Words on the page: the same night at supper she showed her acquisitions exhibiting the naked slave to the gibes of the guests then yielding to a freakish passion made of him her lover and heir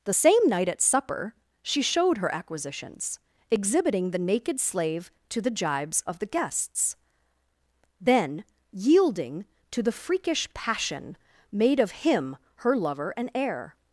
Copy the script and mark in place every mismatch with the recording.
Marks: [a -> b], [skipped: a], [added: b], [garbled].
the same night at supper she showed her acquisitions exhibiting the naked slave to the gibes of the guests then yielding to [a -> the] freakish passion made of him her lover and heir